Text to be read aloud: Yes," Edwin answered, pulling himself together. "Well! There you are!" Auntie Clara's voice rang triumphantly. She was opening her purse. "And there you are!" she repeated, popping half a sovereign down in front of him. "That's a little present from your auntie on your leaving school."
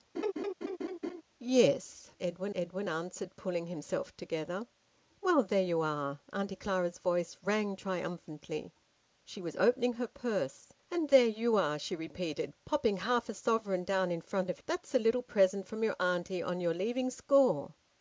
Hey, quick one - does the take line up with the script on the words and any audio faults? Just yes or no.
no